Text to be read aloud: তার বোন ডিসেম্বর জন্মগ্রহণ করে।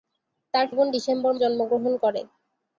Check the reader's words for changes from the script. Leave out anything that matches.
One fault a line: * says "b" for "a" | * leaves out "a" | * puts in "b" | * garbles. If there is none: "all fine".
all fine